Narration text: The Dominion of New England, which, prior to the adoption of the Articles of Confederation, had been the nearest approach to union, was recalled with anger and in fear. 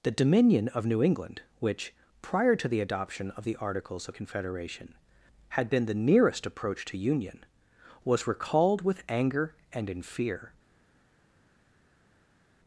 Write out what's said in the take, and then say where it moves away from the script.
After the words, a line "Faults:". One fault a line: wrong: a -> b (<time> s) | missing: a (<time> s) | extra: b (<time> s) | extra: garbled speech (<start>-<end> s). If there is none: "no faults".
The Dominion of New England, which, prior to the adoption of the Articles of Confederation, had been the nearest approach to union, was recalled with anger and in fear.
Faults:
no faults